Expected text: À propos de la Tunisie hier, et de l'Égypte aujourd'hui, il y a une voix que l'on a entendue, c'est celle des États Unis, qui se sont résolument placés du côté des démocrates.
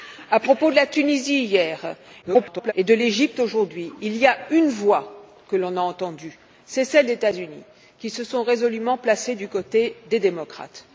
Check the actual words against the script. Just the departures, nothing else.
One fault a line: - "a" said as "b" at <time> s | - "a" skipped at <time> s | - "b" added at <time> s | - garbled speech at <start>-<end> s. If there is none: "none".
- garbled speech at 2.2-2.7 s
- "des" skipped at 7.1 s